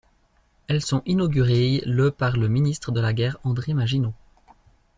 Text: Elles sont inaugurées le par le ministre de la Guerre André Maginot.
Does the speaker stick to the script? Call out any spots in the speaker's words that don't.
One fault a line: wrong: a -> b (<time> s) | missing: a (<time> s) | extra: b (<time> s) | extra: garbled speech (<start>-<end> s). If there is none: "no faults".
no faults